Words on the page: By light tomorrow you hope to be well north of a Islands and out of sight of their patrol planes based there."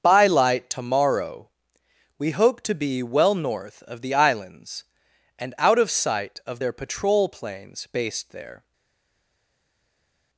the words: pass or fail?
fail